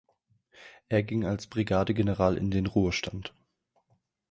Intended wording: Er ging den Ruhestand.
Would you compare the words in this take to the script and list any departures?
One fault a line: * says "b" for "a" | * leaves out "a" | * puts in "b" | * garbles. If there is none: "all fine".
* puts in "als Brigadegeneral in"